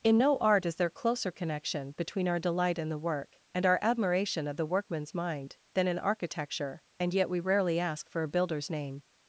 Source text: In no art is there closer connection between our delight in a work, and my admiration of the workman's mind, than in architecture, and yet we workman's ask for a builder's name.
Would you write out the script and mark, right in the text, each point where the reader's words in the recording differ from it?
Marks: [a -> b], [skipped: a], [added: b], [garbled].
In no art is there closer connection between our delight in [a -> the] work, and [my -> our] admiration of the workman's mind, than in architecture, and yet we [workman's -> rarely] ask for a builder's name.